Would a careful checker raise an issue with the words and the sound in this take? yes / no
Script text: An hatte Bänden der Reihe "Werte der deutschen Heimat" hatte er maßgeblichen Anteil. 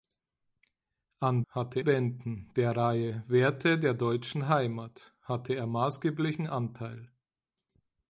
no